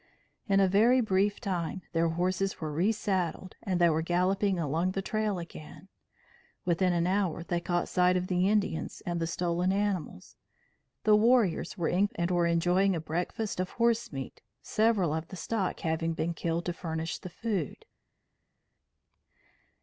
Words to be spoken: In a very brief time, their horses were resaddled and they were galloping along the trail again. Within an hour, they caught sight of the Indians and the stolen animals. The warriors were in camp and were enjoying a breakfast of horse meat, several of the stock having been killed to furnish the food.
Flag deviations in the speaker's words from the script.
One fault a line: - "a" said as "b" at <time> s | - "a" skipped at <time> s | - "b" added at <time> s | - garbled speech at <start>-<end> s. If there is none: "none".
- "camp" skipped at 12.1 s